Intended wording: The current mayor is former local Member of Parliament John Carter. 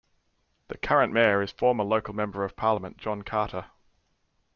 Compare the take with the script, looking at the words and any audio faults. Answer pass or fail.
pass